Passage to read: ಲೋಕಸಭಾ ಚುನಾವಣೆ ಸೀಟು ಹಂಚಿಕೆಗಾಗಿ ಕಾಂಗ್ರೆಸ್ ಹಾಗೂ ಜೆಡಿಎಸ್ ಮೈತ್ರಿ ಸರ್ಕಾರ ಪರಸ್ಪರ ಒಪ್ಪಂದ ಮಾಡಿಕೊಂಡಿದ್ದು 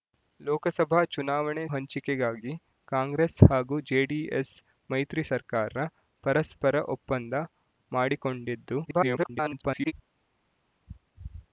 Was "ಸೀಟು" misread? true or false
true